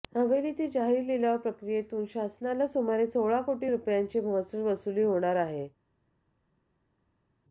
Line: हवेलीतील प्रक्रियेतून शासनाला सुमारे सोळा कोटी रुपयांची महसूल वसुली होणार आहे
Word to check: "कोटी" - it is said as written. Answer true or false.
true